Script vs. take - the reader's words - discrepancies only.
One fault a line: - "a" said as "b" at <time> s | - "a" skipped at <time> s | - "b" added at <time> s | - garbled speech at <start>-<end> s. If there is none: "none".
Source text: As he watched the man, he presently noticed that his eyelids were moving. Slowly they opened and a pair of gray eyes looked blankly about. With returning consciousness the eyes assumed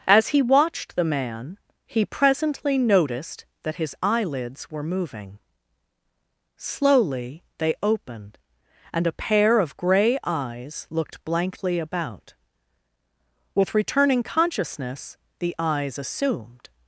none